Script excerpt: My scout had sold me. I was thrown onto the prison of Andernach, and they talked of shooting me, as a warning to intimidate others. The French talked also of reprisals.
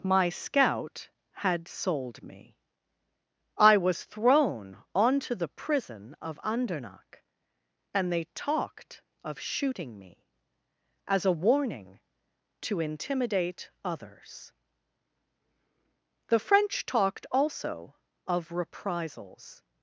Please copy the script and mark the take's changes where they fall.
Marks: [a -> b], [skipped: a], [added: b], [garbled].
My scout had sold me. I was thrown onto the prison of Andernach, and they talked of shooting me, as a warning to intimidate others. The French talked also of reprisals.